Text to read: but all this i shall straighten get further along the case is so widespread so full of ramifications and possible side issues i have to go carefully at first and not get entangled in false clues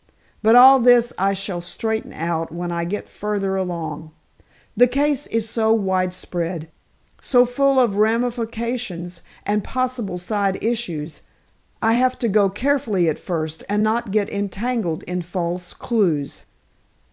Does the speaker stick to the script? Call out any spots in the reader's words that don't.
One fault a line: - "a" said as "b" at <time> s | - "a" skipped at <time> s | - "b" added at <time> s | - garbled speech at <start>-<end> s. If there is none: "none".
- "out when i" added at 2.1 s